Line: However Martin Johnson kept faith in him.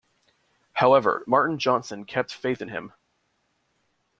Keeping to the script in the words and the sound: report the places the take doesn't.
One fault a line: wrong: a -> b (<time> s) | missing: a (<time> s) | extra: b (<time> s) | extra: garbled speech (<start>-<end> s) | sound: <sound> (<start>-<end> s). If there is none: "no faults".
no faults